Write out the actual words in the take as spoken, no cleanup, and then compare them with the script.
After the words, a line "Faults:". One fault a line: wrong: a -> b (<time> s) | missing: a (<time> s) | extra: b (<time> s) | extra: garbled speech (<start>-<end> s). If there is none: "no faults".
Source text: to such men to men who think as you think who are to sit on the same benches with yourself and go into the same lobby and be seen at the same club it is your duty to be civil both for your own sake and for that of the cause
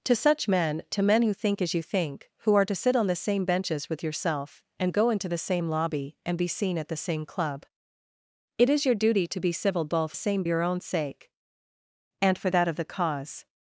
to such men to men who think as you think who are to sit on the same benches with yourself and go into the same lobby and be seen at the same club it is your duty to be civil both same your own sake and for that of the cause
Faults:
wrong: for -> same (10.1 s)